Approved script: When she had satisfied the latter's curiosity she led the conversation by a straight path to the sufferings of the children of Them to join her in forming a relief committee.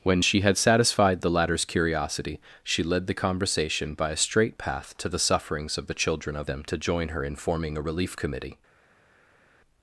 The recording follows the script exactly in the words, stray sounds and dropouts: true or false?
true